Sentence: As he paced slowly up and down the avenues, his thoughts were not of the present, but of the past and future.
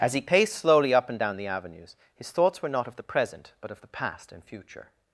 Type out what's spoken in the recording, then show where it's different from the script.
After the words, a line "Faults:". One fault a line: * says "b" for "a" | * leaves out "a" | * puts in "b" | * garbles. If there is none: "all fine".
As he paced slowly up and down the avenues, his thoughts were not of the present, but of the past and future.
Faults:
all fine